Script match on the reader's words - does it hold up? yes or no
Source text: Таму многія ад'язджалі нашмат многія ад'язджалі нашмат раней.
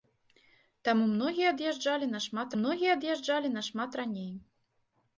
yes